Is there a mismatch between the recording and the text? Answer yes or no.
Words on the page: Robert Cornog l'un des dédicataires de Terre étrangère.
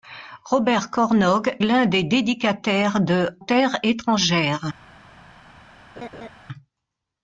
no